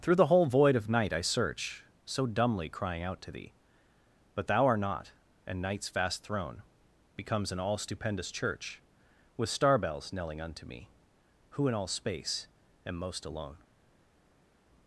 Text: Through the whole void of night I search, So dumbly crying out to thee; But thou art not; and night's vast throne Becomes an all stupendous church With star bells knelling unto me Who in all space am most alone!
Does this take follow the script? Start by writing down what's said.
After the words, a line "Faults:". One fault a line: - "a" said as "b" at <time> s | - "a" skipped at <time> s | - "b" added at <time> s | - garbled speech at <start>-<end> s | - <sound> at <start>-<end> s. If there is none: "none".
Through the whole void of night I search, So dumbly crying out to thee; But thou art not; and night's vast throne Becomes an all stupendous church With star bells knelling unto me Who in all space am most alone!
Faults:
none